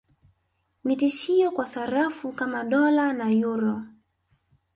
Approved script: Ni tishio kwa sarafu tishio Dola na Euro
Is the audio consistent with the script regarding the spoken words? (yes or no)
no